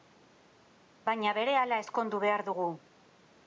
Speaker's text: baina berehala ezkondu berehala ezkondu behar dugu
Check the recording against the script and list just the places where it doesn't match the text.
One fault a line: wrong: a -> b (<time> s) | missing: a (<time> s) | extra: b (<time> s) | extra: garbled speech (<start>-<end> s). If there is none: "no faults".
missing: berehala ezkondu (2.2 s)